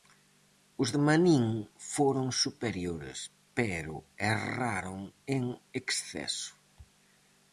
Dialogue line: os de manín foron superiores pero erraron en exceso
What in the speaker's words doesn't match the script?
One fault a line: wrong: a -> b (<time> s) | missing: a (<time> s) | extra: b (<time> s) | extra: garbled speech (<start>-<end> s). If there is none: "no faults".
no faults